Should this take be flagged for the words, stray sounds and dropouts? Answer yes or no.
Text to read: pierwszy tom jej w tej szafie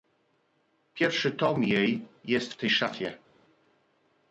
yes